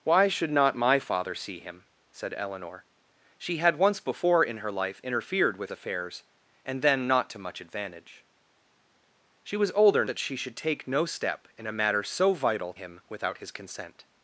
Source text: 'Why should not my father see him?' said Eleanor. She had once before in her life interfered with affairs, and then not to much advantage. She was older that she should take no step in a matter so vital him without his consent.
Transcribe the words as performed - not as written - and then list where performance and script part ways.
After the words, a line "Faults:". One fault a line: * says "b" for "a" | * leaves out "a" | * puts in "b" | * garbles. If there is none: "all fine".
'Why should not my father see him?' said Eleanor. She had once before in her life interfered with affairs, and then not to much advantage. She was older that she should take no step in a matter so vital him without his consent.
Faults:
all fine